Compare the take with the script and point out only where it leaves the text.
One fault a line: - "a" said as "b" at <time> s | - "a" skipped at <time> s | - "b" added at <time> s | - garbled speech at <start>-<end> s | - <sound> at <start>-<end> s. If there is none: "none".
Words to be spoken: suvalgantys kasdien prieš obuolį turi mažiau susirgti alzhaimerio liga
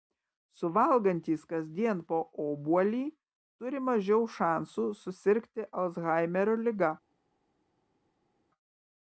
- "prieš" said as "po" at 2.1 s
- "šansų" added at 4.4 s